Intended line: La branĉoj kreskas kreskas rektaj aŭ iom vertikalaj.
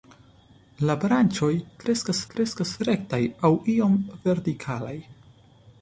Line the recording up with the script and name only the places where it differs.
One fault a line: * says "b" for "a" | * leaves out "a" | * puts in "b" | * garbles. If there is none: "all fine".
all fine